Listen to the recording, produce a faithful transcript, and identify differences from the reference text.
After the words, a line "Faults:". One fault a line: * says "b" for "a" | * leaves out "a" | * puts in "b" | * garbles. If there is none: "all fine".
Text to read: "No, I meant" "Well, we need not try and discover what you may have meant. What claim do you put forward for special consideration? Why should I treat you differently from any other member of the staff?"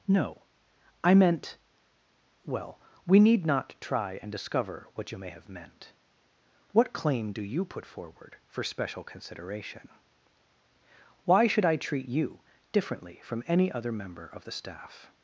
"No, I meant" "Well, we need not try and discover what you may have meant. What claim do you put forward for special consideration? Why should I treat you differently from any other member of the staff?"
Faults:
all fine